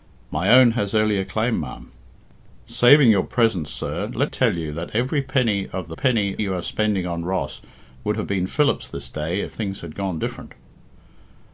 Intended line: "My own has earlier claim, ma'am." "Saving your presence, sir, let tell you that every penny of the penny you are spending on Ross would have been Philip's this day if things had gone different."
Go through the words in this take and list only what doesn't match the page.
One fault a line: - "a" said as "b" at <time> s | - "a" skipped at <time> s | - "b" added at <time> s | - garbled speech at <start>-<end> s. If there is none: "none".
none